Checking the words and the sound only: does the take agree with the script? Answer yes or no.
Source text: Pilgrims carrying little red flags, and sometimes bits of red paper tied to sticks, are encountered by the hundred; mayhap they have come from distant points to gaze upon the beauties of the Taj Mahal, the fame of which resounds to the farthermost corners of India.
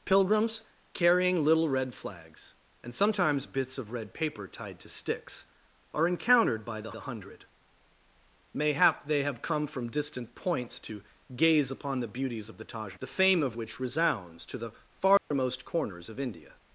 no